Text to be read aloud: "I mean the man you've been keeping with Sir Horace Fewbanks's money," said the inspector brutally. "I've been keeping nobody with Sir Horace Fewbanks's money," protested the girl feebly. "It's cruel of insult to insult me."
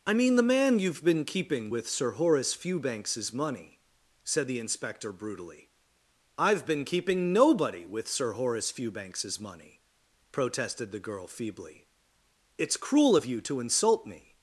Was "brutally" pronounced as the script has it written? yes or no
yes